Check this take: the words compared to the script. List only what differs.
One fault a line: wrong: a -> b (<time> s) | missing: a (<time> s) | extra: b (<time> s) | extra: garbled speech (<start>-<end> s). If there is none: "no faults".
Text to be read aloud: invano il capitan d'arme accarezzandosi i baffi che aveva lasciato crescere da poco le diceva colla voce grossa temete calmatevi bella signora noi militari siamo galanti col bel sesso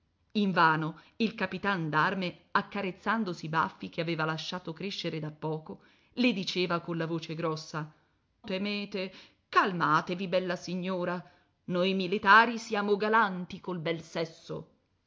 no faults